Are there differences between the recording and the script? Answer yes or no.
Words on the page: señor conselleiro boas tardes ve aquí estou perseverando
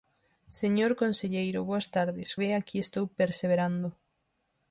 no